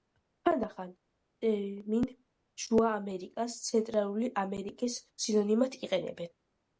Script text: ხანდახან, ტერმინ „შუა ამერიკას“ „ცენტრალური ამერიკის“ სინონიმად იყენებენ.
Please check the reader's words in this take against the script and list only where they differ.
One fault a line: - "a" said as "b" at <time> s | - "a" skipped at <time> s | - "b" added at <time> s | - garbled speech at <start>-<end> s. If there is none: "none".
none